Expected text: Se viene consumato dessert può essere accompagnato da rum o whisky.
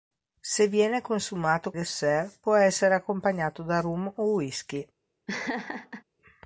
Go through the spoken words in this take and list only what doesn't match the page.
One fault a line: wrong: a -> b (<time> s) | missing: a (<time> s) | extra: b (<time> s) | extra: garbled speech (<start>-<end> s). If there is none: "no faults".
no faults